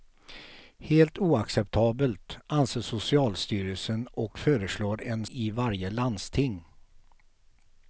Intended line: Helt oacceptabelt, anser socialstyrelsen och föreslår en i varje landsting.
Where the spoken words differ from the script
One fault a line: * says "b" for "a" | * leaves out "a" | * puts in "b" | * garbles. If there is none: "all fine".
all fine